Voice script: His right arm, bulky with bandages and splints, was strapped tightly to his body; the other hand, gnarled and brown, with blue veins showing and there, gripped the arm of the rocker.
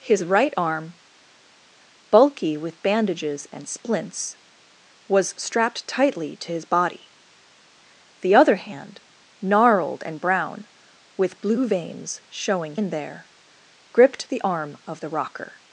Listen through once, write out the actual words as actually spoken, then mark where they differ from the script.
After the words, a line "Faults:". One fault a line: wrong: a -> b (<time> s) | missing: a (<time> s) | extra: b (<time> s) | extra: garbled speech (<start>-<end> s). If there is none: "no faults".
His right arm, bulky with bandages and splints, was strapped tightly to his body; the other hand, gnarled and brown, with blue veins showing and there, gripped the arm of the rocker.
Faults:
no faults